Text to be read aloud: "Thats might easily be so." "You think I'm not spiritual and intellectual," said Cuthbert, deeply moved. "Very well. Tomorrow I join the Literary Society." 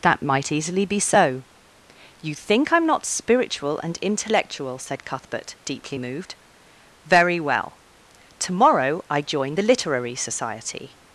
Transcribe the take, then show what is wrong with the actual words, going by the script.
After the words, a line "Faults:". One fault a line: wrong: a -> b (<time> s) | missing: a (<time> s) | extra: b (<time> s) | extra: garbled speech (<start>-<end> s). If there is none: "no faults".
"That might easily be so." "You think I'm not spiritual and intellectual," said Cuthbert, deeply moved. "Very well. Tomorrow I join the Literary Society."
Faults:
wrong: Thats -> That (0.0 s)